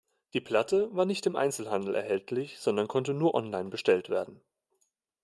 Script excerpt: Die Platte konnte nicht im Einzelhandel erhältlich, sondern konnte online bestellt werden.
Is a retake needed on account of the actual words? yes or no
yes